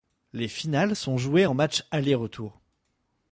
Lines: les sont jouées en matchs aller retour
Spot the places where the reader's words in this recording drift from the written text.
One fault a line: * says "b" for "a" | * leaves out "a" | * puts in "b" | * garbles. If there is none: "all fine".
* puts in "finales"